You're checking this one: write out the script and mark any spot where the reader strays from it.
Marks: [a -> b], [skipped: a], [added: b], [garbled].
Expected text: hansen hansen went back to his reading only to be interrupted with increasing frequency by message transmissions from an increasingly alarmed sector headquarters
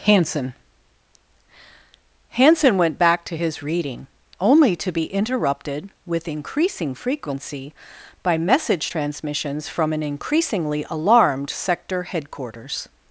hansen hansen went back to his reading only to be interrupted with increasing frequency by message transmissions from an increasingly alarmed sector headquarters